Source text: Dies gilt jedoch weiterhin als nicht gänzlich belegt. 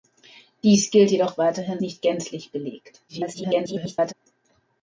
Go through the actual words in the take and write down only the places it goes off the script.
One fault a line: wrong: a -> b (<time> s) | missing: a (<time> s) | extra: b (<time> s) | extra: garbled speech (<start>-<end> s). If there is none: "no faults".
missing: als (1.8 s)
extra: garbled speech (3.1-4.1 s)